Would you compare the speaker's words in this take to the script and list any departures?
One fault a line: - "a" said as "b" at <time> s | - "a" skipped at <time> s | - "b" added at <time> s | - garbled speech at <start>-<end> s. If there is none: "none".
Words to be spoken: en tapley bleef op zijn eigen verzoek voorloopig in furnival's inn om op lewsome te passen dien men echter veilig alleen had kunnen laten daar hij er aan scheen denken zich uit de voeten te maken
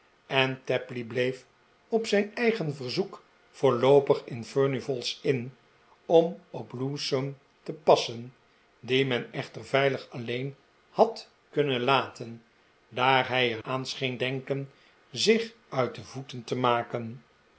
none